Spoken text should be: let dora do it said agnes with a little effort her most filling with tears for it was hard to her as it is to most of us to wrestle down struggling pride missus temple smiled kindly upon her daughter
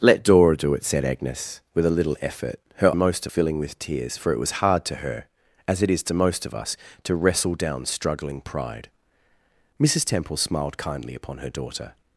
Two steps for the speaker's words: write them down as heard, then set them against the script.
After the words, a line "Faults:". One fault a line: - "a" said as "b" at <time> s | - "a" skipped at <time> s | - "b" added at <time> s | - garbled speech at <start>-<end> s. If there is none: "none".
let dora do it said agnes with a little effort her most filling with tears for it was hard to her as it is to most of us to wrestle down struggling pride missus temple smiled kindly upon her daughter
Faults:
none